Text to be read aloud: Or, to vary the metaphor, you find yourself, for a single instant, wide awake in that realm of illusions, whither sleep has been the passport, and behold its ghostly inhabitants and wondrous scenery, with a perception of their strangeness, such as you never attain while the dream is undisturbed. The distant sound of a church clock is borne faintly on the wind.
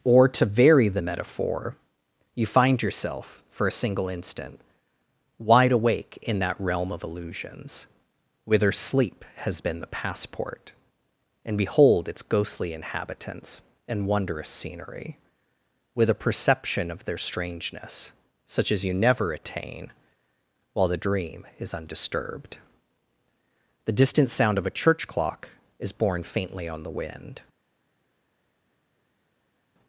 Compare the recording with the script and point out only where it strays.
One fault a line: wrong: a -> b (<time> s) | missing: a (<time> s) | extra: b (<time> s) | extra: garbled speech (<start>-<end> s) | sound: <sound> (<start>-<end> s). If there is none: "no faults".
no faults